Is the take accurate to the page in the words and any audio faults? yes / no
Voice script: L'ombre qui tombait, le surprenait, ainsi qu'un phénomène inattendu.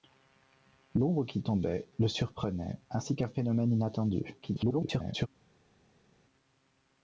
no